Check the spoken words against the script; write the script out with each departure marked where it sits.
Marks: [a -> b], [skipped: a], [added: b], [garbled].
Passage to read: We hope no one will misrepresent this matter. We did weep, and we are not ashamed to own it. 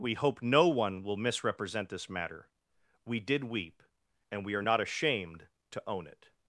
We hope no one will misrepresent this matter. We did weep, and we are not ashamed to own it.